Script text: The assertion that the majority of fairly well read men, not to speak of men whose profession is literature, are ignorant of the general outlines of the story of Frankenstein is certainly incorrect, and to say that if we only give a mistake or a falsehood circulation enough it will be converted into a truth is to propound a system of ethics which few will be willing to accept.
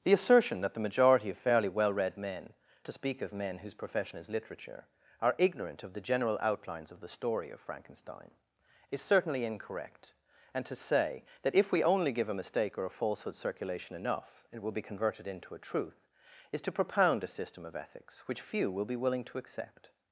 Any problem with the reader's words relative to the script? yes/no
yes